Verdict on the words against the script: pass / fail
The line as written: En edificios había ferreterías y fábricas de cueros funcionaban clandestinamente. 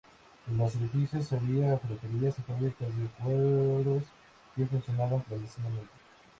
fail